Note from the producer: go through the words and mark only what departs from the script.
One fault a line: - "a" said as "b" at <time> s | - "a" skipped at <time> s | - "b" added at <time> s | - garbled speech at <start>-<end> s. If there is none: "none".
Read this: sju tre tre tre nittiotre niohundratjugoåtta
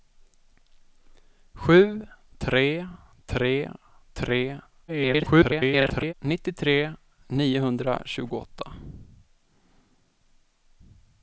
- garbled speech at 4.9-6.1 s